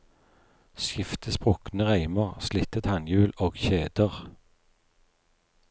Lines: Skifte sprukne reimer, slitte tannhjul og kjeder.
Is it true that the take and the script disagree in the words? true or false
false